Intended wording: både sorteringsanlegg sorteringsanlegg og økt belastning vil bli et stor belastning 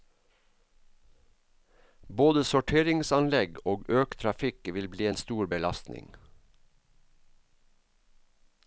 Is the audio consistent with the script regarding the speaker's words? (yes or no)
no